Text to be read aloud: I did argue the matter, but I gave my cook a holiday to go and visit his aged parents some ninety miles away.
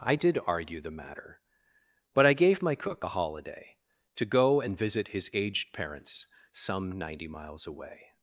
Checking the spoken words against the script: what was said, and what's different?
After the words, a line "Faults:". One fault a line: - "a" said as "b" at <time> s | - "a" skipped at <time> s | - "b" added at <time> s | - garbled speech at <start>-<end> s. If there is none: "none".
I did argue the matter, but I gave my cook a holiday to go and visit his aged parents some ninety miles away.
Faults:
none